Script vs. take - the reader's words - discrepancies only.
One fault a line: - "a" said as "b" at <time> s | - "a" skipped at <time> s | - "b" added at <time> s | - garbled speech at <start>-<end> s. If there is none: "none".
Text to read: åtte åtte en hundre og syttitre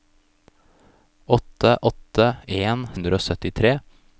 none